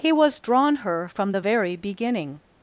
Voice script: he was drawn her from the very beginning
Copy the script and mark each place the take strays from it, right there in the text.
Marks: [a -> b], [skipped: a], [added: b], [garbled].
he was drawn her from the very beginning